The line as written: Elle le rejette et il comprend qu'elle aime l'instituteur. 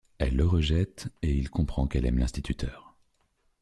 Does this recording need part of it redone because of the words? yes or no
no